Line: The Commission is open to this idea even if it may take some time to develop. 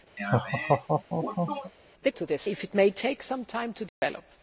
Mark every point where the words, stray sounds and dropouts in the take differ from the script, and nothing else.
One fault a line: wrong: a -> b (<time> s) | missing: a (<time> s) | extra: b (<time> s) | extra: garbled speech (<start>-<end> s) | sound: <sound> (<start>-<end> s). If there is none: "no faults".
sound: laugh (0.2-1.7 s)
missing: Commission is open (2.1 s)
missing: idea even (2.5 s)
sound: dropout (3.9-4.0 s)